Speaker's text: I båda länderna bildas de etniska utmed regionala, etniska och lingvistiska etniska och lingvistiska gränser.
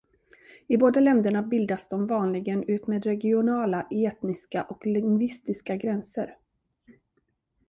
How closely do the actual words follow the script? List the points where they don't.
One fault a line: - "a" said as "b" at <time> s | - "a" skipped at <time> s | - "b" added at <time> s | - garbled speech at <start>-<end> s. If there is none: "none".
- "etniska" said as "vanligen" at 2.1 s
- "etniska och lingvistiska" skipped at 5.8 s